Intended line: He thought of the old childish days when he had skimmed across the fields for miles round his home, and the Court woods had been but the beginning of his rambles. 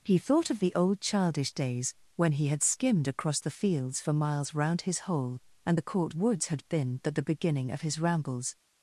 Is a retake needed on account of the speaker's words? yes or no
yes